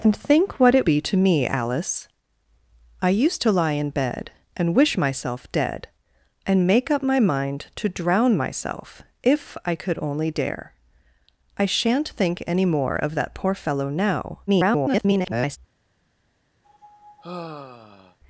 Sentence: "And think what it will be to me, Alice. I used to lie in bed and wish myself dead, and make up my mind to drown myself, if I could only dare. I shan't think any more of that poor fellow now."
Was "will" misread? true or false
true